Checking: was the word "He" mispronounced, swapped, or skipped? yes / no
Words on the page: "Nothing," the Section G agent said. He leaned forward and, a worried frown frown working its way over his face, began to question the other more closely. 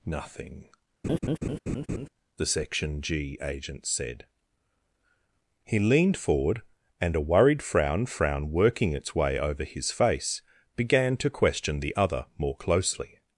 no